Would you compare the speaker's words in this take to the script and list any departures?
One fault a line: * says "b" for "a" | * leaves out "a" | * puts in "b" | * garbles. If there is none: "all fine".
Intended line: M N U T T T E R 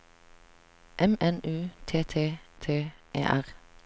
all fine